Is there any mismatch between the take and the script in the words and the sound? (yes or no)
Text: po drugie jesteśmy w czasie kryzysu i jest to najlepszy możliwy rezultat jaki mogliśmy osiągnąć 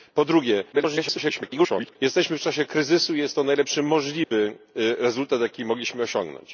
yes